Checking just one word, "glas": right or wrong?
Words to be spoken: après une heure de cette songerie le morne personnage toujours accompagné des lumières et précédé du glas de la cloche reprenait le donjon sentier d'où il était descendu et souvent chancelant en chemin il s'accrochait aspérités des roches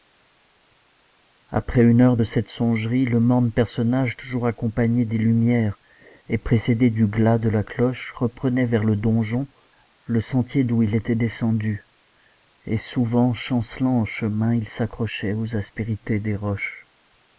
right